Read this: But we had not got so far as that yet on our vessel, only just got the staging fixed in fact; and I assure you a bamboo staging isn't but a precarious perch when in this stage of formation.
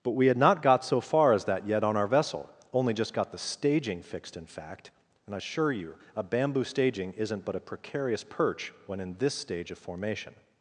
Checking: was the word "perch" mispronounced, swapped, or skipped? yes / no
no